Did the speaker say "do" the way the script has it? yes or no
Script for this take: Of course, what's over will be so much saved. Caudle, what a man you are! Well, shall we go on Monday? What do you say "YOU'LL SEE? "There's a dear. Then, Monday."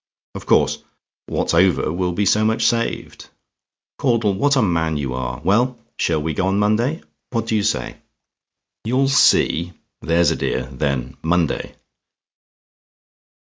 yes